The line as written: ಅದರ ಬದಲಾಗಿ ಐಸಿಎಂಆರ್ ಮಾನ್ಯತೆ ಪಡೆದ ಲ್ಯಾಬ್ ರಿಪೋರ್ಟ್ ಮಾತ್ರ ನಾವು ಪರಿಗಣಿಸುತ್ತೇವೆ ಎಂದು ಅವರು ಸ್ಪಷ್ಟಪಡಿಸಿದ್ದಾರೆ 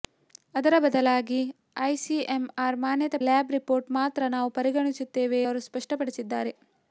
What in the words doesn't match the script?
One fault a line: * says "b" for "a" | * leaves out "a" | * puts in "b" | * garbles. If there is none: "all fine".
* leaves out "ಪಡೆದ"
* leaves out "ಎಂದು"